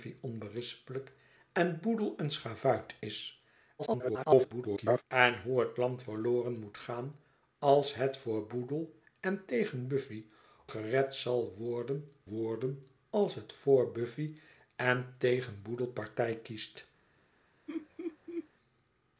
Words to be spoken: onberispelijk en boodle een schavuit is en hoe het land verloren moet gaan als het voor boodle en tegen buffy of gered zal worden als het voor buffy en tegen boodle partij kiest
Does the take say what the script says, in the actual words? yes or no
no